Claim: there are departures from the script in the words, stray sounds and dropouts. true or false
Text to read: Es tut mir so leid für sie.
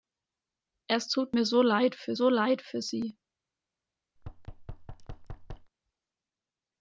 true